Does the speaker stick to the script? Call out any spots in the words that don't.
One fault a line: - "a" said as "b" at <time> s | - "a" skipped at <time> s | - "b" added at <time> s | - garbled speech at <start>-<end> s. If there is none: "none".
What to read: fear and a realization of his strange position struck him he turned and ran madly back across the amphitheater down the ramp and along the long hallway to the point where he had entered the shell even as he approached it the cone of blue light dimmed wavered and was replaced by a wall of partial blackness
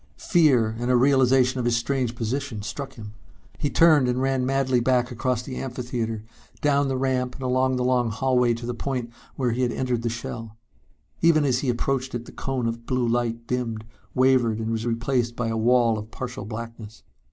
none